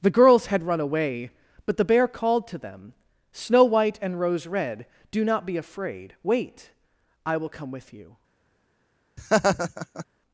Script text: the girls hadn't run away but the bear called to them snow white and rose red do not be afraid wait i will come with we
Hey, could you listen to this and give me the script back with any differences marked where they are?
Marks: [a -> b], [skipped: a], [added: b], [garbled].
the girls [hadn't -> had] run away but the bear called to them snow white and rose red do not be afraid wait i will come with [we -> you]